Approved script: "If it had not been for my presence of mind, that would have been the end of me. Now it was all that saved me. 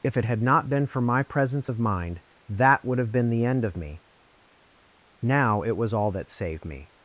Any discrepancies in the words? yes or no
no